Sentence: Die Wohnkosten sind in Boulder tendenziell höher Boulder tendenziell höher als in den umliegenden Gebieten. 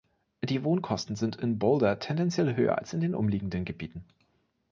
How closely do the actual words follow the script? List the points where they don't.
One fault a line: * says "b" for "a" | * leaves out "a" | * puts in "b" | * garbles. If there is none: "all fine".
* leaves out "Boulder tendenziell höher"